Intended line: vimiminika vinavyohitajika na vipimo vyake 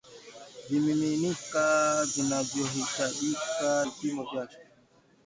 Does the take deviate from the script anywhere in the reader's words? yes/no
yes